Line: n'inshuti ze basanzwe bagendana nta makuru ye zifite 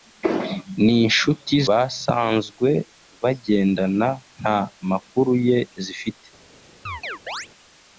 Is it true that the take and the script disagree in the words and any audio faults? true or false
true